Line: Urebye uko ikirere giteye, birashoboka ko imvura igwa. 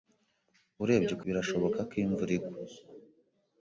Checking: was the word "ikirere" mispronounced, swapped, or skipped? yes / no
yes